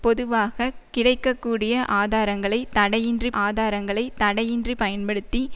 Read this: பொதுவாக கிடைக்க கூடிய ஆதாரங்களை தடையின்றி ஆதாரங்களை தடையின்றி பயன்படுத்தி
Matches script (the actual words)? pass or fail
pass